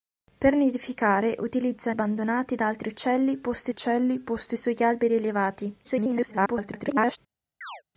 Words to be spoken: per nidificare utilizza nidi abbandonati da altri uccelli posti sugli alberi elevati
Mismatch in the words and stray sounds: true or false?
true